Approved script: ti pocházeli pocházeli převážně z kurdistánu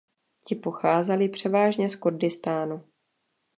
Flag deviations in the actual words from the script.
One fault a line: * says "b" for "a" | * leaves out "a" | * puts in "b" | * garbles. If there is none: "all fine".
* leaves out "pocházeli"